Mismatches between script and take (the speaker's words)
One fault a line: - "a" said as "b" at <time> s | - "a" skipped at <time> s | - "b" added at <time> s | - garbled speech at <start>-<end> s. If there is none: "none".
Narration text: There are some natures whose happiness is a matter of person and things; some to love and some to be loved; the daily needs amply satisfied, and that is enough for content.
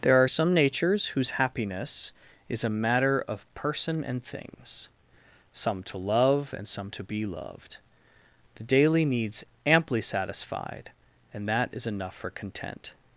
none